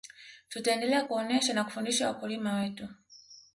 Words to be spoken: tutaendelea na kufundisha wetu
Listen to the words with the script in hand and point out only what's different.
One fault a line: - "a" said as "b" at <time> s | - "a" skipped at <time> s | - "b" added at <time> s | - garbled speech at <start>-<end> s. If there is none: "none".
- "kuonesha" added at 1.0 s
- "wakulima" added at 2.1 s